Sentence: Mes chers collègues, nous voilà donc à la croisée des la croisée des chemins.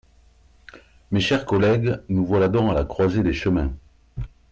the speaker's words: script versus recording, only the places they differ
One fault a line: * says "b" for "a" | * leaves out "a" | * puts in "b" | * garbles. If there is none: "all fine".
* leaves out "la croisée des"